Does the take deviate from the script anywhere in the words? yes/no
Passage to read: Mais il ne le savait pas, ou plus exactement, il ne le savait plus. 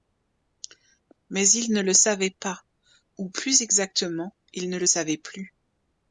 no